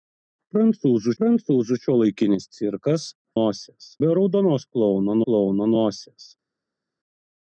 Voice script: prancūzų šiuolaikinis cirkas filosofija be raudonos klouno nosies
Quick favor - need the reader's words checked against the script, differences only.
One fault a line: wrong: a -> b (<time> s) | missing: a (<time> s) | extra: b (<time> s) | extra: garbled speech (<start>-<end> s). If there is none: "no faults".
extra: prancūzų (1.2 s)
wrong: filosofija -> nosies (3.4 s)
extra: klouno (5.2 s)